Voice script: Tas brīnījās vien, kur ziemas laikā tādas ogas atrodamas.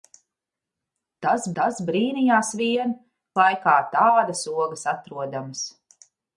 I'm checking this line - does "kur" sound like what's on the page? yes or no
no